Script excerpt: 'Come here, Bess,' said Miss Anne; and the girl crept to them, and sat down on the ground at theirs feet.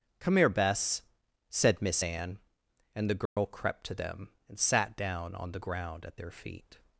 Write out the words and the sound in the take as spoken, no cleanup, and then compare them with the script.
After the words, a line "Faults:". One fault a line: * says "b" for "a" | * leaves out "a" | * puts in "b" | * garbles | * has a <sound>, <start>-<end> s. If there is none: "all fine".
'Come here, Bess,' said Miss Anne; and the girl crept to them, and sat down on the ground at their feet.
Faults:
* has a dropout, 3.3-3.4 s
* says "their" for "theirs"